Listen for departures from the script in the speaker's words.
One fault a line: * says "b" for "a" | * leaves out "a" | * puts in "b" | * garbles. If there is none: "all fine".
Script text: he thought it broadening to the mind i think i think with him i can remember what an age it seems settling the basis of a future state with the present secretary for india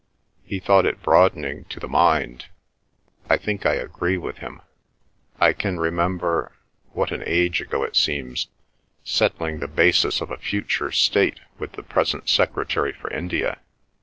* says "agree" for "think"
* puts in "ago"